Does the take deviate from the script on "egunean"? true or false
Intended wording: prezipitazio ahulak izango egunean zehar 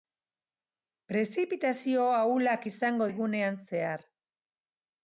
false